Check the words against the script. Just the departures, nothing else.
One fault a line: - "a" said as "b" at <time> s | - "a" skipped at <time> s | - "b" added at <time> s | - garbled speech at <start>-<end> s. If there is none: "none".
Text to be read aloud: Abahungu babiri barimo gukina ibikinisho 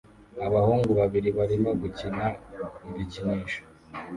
none